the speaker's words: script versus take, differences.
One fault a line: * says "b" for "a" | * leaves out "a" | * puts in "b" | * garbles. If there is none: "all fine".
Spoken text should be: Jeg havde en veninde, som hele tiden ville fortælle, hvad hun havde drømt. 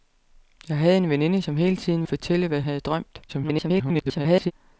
* leaves out "ville"
* leaves out "hun"
* garbles